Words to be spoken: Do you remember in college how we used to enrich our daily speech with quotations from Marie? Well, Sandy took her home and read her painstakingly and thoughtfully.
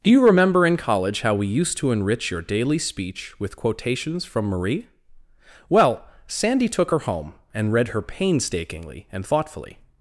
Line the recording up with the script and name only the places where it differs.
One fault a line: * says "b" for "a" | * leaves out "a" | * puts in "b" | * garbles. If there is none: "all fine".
* says "your" for "our"